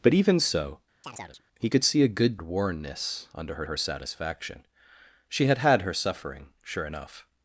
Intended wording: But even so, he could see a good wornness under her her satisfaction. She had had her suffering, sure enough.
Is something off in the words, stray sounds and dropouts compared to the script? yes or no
yes